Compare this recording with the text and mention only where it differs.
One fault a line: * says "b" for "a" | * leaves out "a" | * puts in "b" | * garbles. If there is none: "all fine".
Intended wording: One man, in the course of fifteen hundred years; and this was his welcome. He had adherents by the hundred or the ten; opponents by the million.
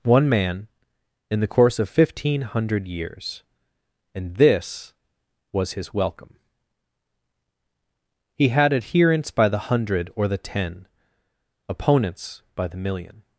all fine